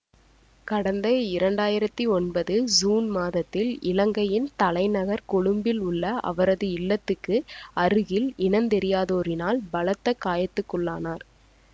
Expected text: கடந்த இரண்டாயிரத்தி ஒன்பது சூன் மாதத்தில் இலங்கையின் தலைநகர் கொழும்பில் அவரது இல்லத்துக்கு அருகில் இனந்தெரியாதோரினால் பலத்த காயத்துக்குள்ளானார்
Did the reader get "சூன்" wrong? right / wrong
right